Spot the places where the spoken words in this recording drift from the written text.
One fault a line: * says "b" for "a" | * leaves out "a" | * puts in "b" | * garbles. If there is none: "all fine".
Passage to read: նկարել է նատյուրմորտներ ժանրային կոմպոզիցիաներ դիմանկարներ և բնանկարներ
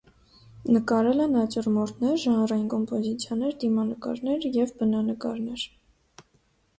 all fine